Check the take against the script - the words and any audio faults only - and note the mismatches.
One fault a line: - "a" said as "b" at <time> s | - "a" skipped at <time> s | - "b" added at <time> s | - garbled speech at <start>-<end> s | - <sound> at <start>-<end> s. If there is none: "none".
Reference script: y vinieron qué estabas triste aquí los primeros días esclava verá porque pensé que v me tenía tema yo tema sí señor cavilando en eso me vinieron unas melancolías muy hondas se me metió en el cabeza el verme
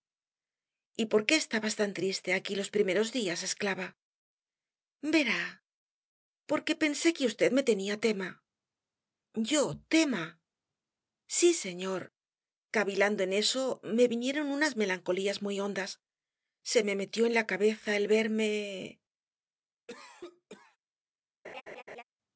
- "vinieron" said as "por" at 1.1 s
- "tan" added at 1.8 s
- "el" said as "la" at 17.3 s
- cough at 19.9-20.8 s
- laugh at 21.4-22.0 s